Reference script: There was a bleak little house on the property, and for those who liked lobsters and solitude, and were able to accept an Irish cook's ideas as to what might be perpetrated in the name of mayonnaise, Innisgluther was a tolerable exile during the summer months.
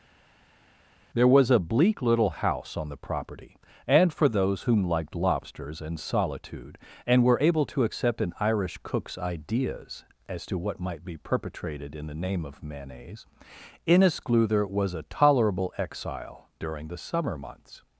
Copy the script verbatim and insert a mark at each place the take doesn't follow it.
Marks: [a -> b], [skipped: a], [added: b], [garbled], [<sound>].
There was a bleak little house on the property, and for those [who -> whom] liked lobsters and solitude, and were able to accept an Irish cook's ideas as to what might be perpetrated in the name of mayonnaise, Innisgluther was a tolerable exile during the summer months.